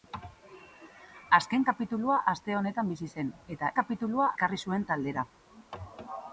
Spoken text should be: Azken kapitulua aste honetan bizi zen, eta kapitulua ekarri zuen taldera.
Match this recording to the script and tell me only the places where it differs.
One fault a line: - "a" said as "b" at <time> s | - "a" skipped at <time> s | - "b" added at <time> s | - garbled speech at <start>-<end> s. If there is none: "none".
none